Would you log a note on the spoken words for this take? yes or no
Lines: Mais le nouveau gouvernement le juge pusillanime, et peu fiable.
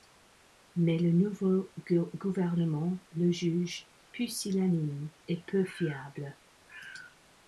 no